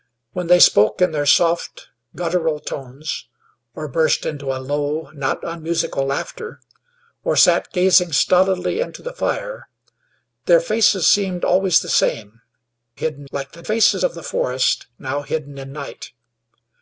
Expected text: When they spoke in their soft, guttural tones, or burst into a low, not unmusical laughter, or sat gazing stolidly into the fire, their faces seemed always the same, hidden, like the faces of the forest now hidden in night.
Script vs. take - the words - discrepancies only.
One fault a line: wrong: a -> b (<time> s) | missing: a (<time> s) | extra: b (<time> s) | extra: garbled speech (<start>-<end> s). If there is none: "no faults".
no faults